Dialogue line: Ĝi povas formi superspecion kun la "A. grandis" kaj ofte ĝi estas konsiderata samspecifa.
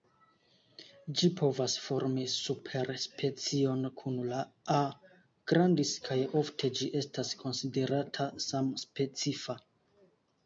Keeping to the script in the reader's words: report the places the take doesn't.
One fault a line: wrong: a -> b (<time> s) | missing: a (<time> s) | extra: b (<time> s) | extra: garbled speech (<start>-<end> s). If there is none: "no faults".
no faults